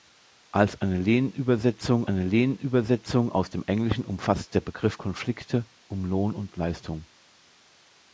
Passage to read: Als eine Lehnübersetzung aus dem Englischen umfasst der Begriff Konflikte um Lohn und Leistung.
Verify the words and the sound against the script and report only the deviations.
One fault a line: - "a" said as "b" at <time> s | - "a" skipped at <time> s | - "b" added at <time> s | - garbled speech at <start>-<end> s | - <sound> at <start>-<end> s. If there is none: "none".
- "eine Lehnübersetzung" added at 2.1 s